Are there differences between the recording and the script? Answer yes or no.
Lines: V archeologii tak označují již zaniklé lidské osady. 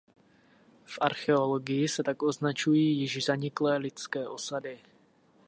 yes